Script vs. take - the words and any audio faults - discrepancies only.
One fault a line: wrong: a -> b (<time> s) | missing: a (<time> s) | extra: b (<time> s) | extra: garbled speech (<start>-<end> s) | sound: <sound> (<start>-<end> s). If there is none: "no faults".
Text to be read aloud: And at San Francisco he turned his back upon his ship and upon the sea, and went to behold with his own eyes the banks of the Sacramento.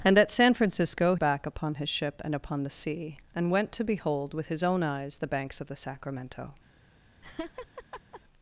missing: he turned his (1.1 s)
sound: laugh (7.2-8.2 s)